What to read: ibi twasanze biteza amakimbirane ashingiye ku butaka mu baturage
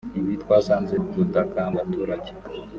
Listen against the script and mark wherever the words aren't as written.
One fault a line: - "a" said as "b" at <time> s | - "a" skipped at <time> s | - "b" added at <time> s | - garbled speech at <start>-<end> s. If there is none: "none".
- "biteza amakimbirane ashingiye" skipped at 0.9 s
- "mu" skipped at 1.6 s